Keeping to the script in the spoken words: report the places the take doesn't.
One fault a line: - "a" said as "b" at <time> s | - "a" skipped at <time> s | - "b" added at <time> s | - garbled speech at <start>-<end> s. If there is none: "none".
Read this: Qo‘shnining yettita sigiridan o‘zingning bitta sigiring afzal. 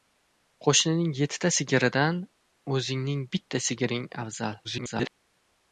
- garbled speech at 4.6-5.1 s